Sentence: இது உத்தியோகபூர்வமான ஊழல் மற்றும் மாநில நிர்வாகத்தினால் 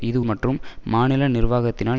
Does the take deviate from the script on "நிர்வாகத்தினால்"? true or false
false